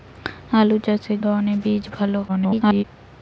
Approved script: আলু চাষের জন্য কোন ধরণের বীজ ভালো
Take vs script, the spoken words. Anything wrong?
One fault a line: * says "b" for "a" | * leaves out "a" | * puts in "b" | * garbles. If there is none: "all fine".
* leaves out "জন্য কোন"
* garbles